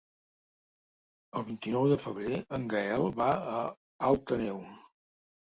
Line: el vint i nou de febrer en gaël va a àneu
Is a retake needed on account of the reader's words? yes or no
yes